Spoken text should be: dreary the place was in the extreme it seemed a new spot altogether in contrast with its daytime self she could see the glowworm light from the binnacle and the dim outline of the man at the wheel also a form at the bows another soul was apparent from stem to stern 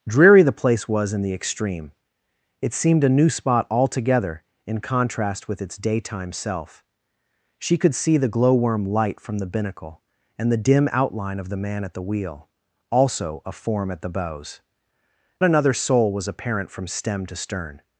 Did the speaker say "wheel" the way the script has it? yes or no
yes